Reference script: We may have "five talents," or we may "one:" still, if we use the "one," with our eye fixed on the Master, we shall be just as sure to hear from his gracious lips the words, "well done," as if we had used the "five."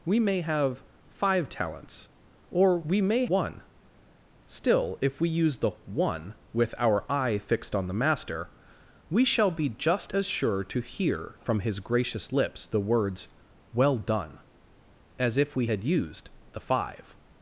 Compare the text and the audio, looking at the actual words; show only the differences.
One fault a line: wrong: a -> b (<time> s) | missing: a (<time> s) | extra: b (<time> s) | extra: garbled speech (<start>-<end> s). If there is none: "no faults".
no faults